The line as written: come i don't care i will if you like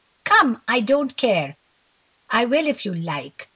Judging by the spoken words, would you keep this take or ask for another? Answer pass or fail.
pass